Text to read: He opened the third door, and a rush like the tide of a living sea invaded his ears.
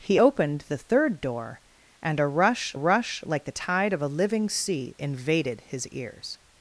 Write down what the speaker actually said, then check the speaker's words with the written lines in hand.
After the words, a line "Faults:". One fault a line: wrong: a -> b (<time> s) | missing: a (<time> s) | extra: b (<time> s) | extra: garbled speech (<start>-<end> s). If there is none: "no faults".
He opened the third door, and a rush rush like the tide of a living sea invaded his ears.
Faults:
extra: rush (2.7 s)